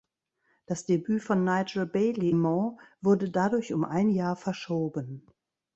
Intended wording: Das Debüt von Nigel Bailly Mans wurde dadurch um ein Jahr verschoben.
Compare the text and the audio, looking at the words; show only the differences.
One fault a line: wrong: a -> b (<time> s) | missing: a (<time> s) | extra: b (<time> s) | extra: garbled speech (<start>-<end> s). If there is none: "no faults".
no faults